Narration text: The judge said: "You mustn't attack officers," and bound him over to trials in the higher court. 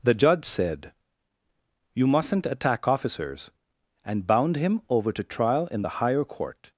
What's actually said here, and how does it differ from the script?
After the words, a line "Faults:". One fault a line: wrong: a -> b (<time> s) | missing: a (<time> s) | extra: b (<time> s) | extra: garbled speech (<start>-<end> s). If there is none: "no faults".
The judge said: "You mustn't attack officers," and bound him over to trial in the higher court.
Faults:
wrong: trials -> trial (5.2 s)